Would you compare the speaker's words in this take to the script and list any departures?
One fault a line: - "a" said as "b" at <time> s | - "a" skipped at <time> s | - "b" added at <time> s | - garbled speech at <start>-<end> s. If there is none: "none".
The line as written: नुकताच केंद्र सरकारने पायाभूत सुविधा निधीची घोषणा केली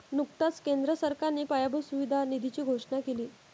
none